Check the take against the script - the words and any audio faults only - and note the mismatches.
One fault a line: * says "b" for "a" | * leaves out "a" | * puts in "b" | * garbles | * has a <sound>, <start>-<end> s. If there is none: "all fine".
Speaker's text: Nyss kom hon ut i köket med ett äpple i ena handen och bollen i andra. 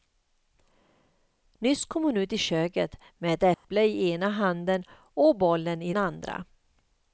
* has a dropout, 3.5-3.6 s